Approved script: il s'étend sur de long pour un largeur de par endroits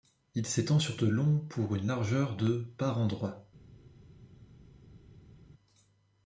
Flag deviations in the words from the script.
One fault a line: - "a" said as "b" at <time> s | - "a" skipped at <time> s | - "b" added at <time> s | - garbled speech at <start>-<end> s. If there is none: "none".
- "un" said as "une" at 1.7 s